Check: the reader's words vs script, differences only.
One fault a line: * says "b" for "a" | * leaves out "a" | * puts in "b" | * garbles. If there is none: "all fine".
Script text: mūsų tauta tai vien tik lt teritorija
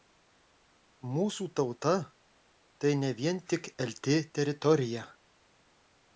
* puts in "ne"